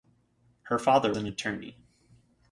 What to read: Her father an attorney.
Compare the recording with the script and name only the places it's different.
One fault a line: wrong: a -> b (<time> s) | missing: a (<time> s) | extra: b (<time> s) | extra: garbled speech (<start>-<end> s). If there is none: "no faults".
no faults